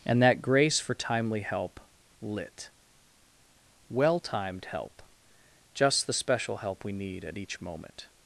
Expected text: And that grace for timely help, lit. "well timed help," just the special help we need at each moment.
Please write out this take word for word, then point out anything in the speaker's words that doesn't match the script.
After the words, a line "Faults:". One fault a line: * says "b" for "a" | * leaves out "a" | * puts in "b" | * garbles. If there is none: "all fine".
And that grace for timely help, lit. "well timed help," just the special help we need at each moment.
Faults:
all fine